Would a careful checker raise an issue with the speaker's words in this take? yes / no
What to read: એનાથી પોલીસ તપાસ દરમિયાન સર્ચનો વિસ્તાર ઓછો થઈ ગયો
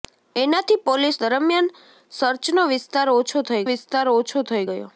yes